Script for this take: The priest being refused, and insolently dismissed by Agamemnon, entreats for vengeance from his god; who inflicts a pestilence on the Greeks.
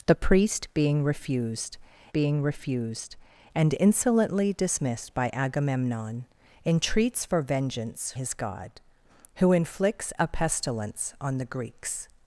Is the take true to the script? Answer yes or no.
no